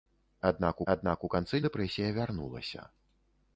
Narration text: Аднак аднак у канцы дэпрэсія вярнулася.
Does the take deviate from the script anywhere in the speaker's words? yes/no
no